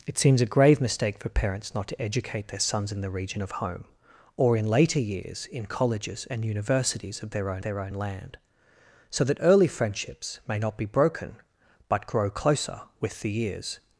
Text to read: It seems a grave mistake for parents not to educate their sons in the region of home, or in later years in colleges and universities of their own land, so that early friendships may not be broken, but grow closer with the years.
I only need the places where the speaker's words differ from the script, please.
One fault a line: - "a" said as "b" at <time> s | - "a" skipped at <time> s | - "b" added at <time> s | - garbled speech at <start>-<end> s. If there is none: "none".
- "their own" added at 7.6 s